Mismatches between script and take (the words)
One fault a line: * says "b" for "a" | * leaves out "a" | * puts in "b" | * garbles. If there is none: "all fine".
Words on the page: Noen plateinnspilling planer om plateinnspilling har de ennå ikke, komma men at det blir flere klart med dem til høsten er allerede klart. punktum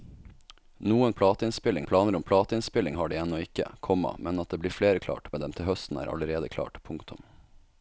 all fine